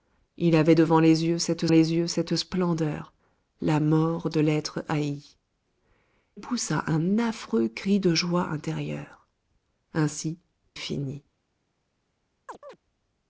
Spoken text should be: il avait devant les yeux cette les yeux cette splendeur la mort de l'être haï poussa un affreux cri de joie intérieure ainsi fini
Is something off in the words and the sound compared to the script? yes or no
yes